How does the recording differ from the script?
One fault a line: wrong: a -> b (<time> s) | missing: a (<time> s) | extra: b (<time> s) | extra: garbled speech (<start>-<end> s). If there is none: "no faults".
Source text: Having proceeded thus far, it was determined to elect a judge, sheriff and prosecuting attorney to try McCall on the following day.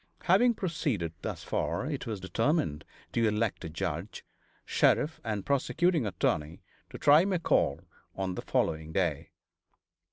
no faults